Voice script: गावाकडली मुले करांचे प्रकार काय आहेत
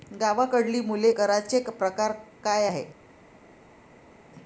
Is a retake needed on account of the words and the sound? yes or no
no